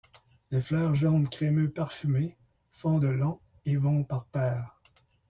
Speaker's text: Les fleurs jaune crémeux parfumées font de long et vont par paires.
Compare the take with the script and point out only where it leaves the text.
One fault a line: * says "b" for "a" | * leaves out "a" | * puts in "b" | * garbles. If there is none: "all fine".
all fine